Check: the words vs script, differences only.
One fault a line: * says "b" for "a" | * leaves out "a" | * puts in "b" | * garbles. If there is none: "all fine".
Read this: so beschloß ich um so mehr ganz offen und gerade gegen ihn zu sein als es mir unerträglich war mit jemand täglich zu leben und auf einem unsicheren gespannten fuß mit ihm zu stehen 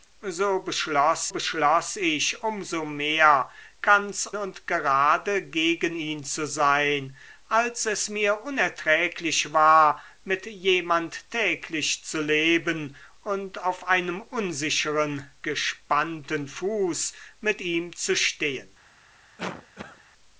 * puts in "beschloß"
* leaves out "offen"